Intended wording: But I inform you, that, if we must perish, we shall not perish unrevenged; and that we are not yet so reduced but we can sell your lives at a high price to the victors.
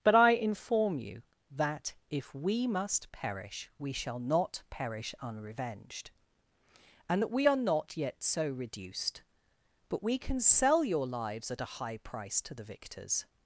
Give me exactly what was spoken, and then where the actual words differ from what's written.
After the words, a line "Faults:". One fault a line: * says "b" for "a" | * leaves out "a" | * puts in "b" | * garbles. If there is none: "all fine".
But I inform you, that, if we must perish, we shall not perish unrevenged; and that we are not yet so reduced but we can sell your lives at a high price to the victors.
Faults:
all fine